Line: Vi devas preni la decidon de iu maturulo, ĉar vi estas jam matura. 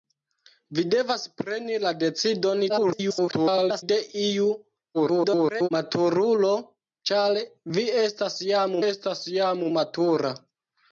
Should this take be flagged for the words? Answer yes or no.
yes